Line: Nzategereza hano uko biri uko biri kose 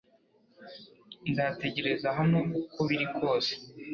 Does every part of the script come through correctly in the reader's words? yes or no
no